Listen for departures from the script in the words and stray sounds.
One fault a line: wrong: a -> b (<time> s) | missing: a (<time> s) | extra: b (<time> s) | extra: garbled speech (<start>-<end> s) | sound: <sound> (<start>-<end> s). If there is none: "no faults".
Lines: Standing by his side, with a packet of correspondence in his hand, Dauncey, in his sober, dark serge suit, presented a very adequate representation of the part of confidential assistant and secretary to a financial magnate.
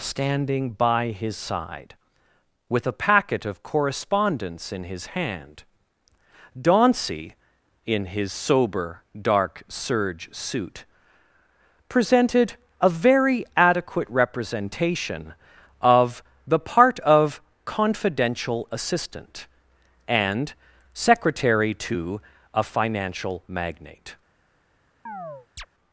sound: chirp (25.1-25.7 s)